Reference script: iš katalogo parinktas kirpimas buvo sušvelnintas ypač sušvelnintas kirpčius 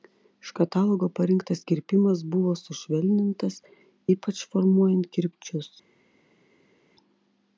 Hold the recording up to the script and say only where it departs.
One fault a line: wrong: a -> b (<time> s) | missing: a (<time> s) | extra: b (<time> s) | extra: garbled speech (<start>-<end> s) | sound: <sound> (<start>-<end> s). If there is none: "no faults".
wrong: sušvelnintas -> formuojant (4.5 s)